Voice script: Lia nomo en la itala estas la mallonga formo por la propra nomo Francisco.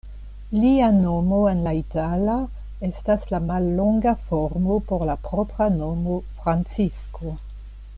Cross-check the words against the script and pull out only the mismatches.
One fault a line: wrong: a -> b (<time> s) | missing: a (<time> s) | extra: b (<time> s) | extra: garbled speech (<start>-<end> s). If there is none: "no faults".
no faults